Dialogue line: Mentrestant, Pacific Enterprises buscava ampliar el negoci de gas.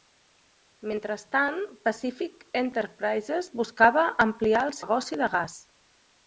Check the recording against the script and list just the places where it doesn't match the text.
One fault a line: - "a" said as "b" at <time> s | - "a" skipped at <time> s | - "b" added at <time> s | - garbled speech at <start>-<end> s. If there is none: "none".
none